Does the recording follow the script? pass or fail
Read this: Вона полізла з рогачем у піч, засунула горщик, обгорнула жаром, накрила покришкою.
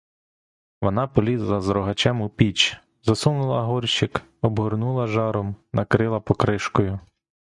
pass